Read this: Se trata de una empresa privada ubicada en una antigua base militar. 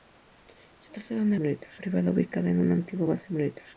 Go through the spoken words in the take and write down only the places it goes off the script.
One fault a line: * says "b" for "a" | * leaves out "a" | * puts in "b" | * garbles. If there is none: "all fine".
* says "militar" for "empresa"